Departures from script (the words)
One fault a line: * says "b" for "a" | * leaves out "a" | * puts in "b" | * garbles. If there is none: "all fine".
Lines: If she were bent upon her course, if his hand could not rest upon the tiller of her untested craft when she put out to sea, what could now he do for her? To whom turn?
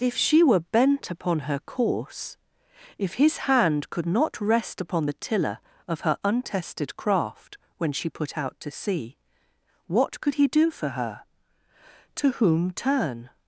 * leaves out "now"